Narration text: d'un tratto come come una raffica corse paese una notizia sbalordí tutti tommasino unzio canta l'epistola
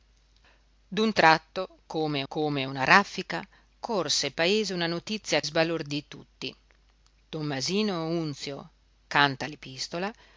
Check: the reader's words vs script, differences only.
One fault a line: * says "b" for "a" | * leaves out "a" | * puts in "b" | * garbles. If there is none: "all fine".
all fine